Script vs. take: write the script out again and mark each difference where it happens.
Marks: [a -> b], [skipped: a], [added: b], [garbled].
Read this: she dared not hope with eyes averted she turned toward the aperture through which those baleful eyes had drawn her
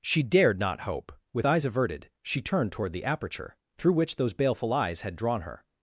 she dared not hope with eyes averted she turned toward the aperture through which those baleful eyes had drawn her